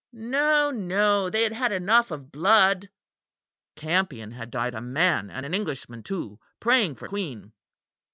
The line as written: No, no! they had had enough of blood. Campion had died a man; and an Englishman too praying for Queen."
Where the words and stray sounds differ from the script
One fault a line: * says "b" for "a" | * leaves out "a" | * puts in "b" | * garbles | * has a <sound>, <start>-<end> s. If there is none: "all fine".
all fine